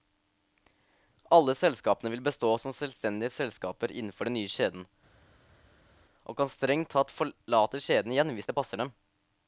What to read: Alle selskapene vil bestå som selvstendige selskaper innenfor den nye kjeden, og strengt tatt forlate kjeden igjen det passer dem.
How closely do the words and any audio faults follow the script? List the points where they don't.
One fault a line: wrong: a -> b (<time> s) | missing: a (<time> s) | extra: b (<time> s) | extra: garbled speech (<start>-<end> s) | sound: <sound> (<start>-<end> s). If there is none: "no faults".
extra: kan (6.4 s)
extra: hvis (8.4 s)